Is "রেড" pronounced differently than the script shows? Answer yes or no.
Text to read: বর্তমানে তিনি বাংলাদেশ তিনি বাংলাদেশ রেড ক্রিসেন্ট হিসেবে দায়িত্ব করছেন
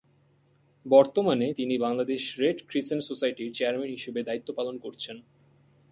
yes